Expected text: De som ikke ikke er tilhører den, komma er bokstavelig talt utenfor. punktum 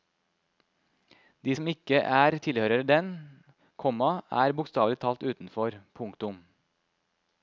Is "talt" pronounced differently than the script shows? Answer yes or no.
no